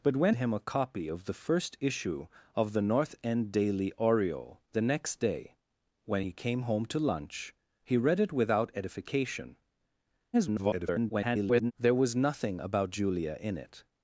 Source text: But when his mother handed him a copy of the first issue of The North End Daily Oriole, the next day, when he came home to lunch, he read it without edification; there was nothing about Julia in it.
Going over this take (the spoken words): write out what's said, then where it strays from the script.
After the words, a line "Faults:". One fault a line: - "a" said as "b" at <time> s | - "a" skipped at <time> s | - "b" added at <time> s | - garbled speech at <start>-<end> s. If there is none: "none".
But when him a copy of the first issue of The North End Daily Oriole, the next day, when he came home to lunch, he read it without edification; [garbled] there was nothing about Julia in it.
Faults:
- "his mother handed" skipped at 0.3 s
- garbled speech at 10.3-11.7 s